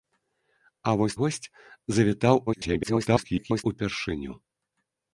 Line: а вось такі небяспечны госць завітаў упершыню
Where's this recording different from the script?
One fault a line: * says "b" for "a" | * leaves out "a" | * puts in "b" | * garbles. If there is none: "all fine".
* leaves out "такі небяспечны"
* garbles